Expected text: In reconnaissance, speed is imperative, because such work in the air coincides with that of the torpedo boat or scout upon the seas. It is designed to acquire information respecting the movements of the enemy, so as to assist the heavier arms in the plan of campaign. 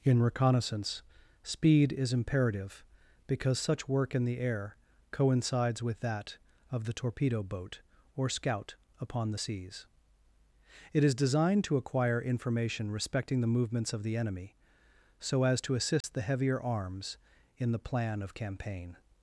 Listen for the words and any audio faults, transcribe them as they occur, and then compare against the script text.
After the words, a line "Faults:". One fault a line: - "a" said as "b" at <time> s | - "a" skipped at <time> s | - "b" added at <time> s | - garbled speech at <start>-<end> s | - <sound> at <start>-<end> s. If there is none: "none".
In reconnaissance, speed is imperative, because such work in the air coincides with that of the torpedo boat or scout upon the seas. It is designed to acquire information respecting the movements of the enemy, so as to assist the heavier arms in the plan of campaign.
Faults:
- dropout at 16.0-16.0 s